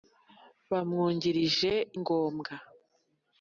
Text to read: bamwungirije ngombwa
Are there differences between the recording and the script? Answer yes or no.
no